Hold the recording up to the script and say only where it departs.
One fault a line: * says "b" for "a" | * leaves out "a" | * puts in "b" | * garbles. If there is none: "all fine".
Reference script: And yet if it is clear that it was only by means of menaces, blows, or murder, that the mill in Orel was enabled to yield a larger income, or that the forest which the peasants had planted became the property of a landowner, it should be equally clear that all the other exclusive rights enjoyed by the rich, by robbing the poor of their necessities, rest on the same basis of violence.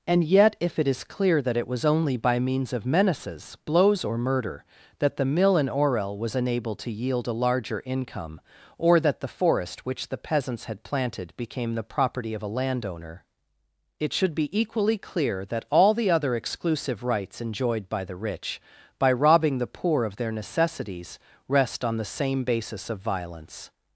all fine